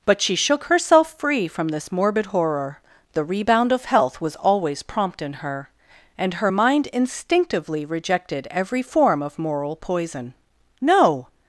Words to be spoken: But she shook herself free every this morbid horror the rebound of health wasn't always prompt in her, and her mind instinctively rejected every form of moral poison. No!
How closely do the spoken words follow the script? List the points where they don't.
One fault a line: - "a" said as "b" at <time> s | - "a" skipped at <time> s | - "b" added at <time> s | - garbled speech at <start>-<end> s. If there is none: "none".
- "every" said as "from" at 1.5 s
- "wasn't" said as "was" at 4.2 s